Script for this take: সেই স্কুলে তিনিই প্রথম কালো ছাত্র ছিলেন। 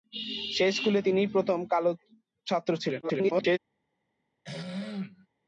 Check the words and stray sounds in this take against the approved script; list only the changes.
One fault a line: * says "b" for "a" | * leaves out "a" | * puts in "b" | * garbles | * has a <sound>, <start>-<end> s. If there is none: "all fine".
* garbles
* has a throat clearing, 4.4-5.3 s